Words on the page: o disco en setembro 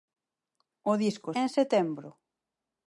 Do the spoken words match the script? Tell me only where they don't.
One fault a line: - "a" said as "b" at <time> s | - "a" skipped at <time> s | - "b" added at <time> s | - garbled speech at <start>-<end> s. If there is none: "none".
none